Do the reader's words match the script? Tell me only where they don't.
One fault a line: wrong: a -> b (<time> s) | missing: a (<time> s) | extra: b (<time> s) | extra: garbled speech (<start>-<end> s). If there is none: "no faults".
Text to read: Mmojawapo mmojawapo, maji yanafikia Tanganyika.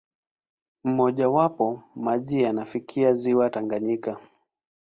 missing: mmojawapo (1.8 s)
extra: ziwa (3.1 s)